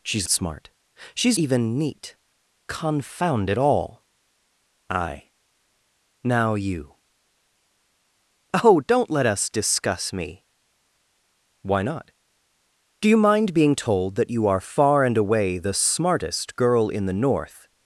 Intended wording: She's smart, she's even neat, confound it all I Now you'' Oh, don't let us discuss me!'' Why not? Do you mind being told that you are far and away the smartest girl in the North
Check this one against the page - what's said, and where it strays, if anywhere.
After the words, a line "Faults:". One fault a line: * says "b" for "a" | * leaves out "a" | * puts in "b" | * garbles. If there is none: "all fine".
She's smart, she's even neat, confound it all I Now you'' Oh, don't let us discuss me!'' Why not? Do you mind being told that you are far and away the smartest girl in the North
Faults:
all fine